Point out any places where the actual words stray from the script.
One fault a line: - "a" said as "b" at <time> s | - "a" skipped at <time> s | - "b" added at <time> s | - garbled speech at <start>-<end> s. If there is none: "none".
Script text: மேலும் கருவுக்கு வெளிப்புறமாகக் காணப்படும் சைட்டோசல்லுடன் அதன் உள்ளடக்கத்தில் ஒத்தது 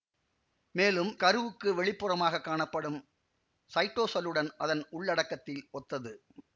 none